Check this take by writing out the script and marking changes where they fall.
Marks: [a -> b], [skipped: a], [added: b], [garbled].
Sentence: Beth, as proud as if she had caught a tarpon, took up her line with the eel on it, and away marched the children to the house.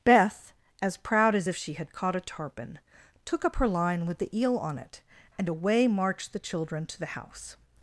Beth, as proud as if she had caught a tarpon, took up her line with the eel on it, and away marched the children to the house.